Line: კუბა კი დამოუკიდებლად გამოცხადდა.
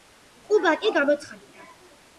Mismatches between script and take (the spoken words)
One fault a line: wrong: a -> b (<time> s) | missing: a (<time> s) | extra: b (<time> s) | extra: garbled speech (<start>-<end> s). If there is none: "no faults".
missing: დამოუკიდებლად (0.9 s)